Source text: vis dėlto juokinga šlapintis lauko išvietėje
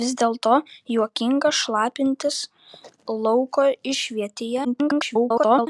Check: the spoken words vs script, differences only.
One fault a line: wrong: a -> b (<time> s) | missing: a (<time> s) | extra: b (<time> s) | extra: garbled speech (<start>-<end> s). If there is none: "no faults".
extra: garbled speech (4.6-5.7 s)